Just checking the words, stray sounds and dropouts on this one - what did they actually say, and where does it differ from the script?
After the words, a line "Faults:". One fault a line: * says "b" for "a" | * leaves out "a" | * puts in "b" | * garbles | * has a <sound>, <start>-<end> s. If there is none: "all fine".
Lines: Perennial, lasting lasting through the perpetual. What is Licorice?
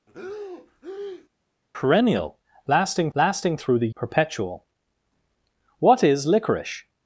Perennial, lasting lasting through the perpetual. What is Licorice?
Faults:
* has a breath, 0.1-1.3 s